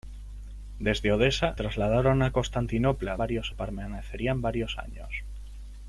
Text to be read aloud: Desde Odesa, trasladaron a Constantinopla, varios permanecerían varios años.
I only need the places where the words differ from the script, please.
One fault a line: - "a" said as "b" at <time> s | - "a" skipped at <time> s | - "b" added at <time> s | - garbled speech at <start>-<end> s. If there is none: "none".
none